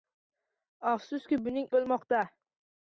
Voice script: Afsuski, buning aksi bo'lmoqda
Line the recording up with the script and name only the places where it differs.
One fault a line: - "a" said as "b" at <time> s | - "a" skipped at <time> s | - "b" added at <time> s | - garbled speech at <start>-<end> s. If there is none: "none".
- "aksi" skipped at 1.7 s